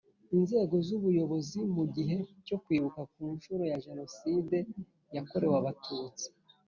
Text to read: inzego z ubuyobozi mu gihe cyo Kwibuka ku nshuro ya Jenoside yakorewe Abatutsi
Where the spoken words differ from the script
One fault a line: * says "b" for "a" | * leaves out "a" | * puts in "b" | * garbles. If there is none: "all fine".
all fine